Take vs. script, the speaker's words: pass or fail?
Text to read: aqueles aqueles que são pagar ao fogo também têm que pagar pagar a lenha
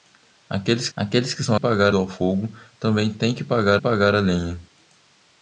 pass